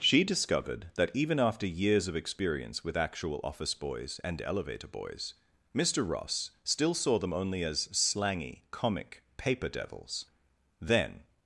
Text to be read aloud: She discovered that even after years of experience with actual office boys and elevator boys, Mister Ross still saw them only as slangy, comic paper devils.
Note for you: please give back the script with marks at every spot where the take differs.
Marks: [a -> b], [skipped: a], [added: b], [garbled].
She discovered that even after years of experience with actual office boys and elevator boys, Mister Ross still saw them only as slangy, comic paper devils. [added: Then]